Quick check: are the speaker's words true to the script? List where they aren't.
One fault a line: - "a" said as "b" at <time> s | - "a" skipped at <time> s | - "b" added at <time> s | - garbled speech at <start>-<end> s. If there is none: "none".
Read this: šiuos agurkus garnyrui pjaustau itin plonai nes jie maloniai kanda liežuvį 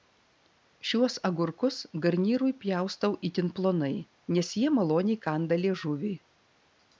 none